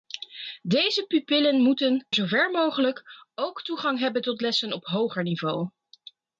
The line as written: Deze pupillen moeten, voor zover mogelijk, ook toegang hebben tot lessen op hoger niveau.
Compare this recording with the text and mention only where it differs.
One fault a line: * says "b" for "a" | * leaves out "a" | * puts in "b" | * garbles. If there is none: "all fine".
* leaves out "voor"